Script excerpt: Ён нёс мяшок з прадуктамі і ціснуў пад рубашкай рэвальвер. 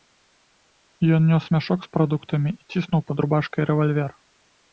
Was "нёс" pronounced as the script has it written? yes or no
yes